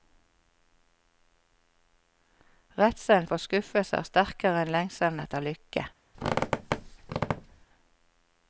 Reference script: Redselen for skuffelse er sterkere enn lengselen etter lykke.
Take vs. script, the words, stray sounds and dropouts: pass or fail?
fail